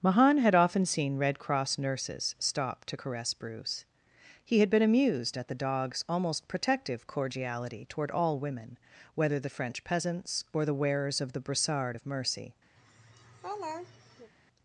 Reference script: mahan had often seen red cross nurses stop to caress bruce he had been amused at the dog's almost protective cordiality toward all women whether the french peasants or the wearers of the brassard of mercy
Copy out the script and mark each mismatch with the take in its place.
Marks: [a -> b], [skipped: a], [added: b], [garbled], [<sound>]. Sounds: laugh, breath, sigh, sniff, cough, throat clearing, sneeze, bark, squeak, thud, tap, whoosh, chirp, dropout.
mahan had often seen red cross nurses stop to caress bruce he had been amused at the dog's almost protective cordiality toward all women whether the french peasants or the wearers of the brassard of mercy [laugh]